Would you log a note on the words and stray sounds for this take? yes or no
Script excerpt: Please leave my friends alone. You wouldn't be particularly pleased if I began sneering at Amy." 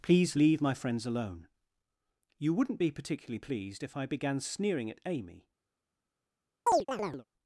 yes